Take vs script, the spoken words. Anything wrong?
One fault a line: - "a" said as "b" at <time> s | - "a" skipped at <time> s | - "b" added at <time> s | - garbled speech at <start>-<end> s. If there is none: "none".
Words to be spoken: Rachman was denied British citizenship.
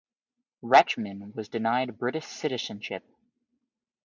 none